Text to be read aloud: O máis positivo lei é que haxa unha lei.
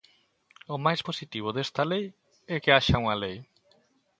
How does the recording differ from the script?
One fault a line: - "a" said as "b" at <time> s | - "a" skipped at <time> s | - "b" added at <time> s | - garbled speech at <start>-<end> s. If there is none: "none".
- "desta" added at 1.5 s